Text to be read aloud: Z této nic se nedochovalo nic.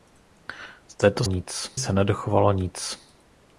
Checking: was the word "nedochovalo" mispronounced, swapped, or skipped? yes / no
no